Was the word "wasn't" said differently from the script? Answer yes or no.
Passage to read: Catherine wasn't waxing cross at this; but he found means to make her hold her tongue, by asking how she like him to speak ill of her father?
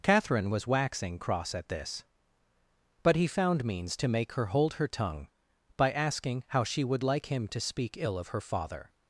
yes